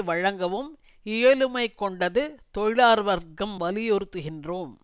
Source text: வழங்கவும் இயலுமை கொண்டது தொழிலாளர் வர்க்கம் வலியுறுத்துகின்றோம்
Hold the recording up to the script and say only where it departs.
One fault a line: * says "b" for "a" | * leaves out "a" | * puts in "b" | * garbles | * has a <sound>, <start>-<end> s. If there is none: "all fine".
all fine